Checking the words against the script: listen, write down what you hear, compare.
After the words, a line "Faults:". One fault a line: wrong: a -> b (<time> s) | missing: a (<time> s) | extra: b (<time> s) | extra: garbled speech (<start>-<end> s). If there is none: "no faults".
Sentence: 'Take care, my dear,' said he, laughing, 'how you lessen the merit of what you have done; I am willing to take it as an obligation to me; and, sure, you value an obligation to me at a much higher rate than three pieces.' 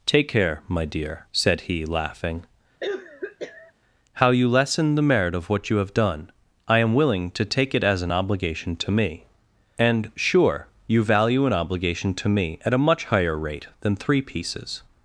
'Take care, my dear,' said he, laughing, 'how you lessen the merit of what you have done; I am willing to take it as an obligation to me; and, sure, you value an obligation to me at a much higher rate than three pieces.'
Faults:
no faults